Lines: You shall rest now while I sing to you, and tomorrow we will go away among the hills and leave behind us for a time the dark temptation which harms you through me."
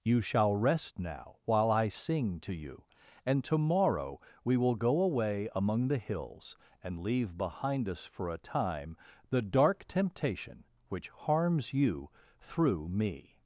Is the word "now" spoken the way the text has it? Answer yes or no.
yes